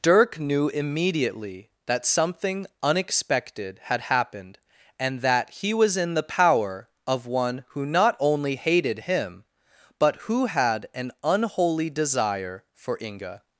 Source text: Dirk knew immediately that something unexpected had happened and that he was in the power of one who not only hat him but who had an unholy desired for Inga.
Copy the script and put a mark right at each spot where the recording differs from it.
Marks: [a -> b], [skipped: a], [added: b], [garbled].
Dirk knew immediately that something unexpected had happened and that he was in the power of one who not only [hat -> hated] him but who had an unholy [desired -> desire] for Inga.